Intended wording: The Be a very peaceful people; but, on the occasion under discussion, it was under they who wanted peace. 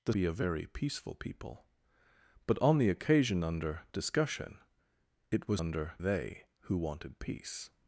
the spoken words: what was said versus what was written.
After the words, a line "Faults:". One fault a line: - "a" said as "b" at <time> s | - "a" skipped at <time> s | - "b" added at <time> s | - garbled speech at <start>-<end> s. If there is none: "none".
The Be a very peaceful people; but, on the occasion under discussion, it was under they who wanted peace.
Faults:
none